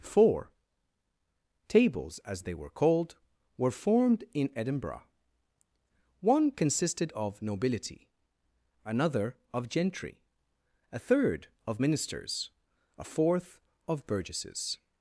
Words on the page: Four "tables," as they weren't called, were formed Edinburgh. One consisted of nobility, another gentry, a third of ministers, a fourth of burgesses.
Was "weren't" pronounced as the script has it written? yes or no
no